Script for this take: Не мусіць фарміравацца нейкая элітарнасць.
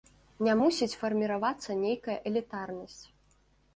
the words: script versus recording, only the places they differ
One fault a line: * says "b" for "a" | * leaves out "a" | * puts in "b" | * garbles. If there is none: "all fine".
all fine